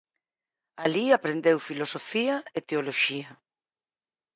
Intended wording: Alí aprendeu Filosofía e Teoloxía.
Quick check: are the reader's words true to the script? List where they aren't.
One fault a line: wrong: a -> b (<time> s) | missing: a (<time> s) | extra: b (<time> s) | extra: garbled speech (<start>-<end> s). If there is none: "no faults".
no faults